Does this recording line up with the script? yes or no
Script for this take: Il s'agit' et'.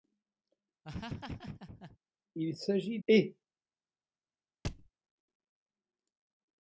yes